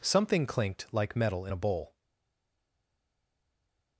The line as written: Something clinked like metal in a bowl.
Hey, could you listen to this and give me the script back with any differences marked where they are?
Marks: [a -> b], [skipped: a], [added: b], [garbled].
Something clinked like metal in a bowl.